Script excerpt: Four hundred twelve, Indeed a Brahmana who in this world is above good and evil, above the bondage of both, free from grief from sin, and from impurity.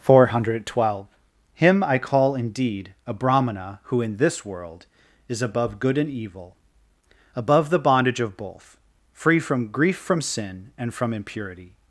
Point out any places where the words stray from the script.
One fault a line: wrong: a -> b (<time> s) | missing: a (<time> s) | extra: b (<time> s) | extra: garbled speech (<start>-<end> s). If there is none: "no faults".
extra: Him I call (1.5 s)